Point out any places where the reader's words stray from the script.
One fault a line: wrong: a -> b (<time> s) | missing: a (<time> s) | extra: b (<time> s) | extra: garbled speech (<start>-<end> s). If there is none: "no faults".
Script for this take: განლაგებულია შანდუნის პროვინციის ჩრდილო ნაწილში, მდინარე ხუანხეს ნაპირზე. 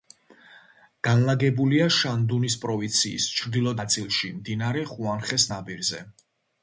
no faults